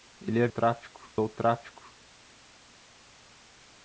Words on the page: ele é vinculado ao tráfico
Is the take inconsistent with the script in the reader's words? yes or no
yes